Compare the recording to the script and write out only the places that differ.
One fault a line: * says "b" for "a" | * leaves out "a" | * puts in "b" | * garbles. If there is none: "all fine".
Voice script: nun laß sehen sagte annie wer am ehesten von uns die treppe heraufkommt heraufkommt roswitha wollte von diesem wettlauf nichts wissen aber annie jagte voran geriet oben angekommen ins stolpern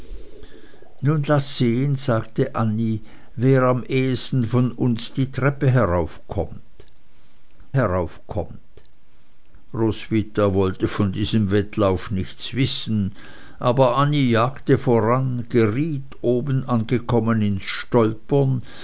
all fine